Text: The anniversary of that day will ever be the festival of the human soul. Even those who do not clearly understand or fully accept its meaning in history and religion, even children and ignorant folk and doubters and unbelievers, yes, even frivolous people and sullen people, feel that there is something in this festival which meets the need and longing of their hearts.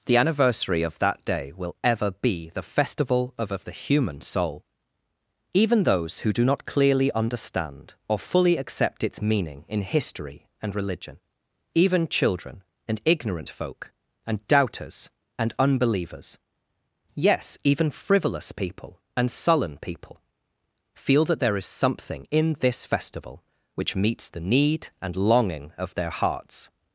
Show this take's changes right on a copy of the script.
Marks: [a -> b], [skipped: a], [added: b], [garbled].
The anniversary of that day will ever be the festival of [added: of] the human soul. Even those who do not clearly understand or fully accept its meaning in history and religion, even children and ignorant folk and doubters and unbelievers, yes, even frivolous people and sullen people, feel that there is something in this festival which meets the need and longing of their hearts.